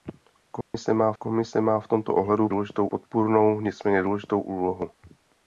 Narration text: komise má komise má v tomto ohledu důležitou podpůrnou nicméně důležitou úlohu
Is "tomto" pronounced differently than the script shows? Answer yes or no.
no